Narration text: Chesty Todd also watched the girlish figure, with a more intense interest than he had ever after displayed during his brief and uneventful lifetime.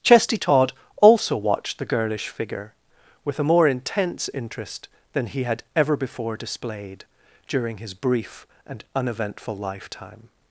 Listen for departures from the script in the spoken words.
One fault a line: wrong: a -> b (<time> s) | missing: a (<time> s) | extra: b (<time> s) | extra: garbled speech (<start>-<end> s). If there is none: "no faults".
wrong: after -> before (6.0 s)